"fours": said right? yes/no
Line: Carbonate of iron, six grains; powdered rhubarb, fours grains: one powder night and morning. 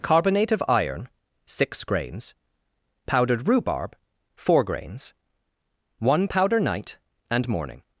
no